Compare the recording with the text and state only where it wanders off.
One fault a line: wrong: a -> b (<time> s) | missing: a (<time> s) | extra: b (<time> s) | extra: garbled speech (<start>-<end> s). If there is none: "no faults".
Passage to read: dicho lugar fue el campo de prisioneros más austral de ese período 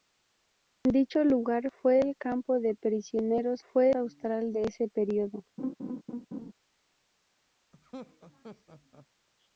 wrong: más -> fue (3.6 s)